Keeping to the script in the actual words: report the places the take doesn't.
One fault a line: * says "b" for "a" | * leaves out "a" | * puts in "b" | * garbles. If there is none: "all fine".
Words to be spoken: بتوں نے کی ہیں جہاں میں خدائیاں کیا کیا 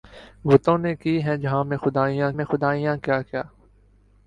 * puts in "میں خدائیاں"